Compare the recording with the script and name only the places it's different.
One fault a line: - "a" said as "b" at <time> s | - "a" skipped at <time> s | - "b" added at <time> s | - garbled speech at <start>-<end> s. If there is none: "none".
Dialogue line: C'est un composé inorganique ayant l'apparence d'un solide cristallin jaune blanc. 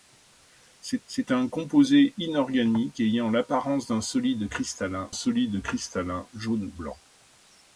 - "c'est" added at 1.0 s
- "solide cristallin" added at 5.1 s